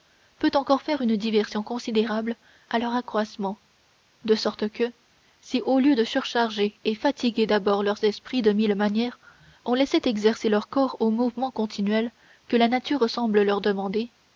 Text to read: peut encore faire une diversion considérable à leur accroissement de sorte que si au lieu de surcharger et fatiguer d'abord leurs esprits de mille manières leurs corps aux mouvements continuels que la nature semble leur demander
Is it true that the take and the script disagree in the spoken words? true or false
true